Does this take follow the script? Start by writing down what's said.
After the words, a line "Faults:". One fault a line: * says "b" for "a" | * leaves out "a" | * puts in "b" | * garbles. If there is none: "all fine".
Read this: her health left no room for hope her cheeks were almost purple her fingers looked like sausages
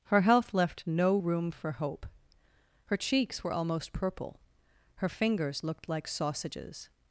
her health left no room for hope her cheeks were almost purple her fingers looked like sausages
Faults:
all fine